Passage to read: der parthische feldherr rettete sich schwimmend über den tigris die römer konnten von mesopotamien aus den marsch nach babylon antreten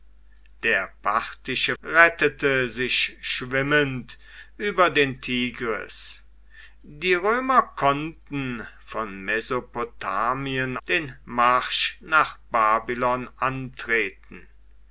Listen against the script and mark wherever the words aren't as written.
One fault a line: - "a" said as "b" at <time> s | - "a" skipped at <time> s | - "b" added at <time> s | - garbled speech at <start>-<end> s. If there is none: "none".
- "feldherr" skipped at 1.8 s
- "aus" skipped at 10.8 s